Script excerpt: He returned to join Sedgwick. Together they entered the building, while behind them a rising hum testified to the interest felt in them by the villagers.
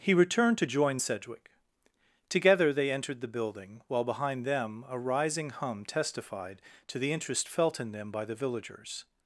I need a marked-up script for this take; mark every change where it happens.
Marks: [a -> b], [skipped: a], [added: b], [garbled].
He returned to join Sedgwick. Together they entered the building, while behind them a rising hum testified to the interest felt in them by the villagers.